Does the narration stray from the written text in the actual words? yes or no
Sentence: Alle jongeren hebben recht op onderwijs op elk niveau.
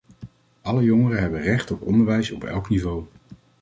no